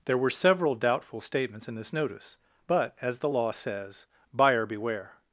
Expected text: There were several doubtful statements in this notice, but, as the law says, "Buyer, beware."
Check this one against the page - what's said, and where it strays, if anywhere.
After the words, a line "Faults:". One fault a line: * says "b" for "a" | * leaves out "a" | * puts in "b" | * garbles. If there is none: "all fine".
There were several doubtful statements in this notice, but, as the law says, "Buyer, beware."
Faults:
all fine